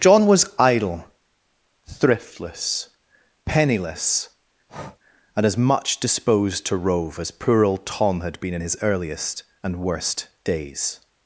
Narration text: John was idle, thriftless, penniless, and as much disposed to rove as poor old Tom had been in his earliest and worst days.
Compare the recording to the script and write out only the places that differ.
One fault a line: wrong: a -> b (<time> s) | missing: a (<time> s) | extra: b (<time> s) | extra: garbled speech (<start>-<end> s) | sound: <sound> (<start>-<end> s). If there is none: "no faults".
sound: breath (4.7-5.0 s)